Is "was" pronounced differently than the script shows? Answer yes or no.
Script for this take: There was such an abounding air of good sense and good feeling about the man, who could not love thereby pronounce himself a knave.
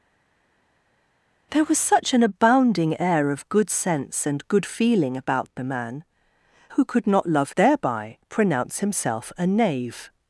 no